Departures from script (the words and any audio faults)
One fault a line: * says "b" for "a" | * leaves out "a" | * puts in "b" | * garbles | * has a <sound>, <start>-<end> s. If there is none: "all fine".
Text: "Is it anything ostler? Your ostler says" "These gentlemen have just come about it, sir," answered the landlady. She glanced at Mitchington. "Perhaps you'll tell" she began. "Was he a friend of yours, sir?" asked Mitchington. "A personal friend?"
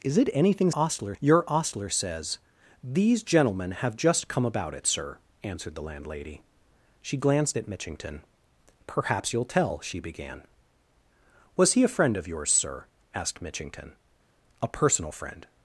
all fine